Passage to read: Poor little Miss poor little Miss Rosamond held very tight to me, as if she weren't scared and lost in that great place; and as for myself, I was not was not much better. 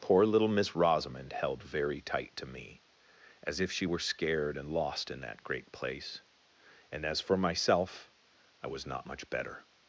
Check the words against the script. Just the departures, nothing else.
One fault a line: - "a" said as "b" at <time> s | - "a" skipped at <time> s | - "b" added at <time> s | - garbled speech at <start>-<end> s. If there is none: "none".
- "poor little Miss" skipped at 0.8 s
- "weren't" said as "were" at 3.8 s
- "was not" skipped at 9.1 s